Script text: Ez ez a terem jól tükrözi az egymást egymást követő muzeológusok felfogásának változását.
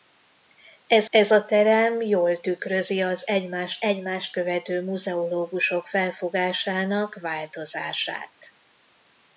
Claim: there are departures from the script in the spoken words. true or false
false